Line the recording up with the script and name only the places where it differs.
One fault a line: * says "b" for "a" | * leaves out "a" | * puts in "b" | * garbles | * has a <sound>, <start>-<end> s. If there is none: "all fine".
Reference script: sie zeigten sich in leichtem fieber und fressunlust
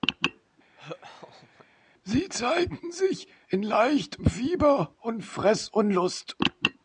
* has a laugh, 0.8-1.7 s